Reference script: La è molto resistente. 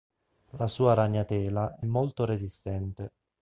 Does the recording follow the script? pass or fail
fail